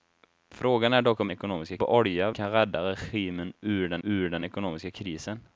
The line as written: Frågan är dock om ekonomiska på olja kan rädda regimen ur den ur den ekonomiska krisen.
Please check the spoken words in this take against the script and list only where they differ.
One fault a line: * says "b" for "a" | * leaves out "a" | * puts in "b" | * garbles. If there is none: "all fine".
all fine